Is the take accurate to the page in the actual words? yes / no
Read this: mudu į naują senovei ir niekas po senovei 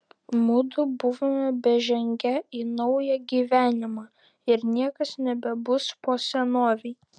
no